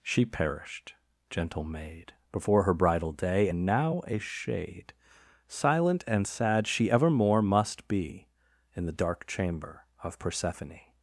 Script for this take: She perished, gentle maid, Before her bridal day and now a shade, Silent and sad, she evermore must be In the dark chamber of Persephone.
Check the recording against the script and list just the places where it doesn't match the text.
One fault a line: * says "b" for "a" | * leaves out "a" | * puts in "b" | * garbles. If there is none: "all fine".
all fine